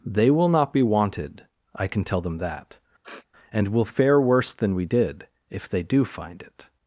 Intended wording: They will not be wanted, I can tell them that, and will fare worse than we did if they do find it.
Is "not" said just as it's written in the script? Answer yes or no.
yes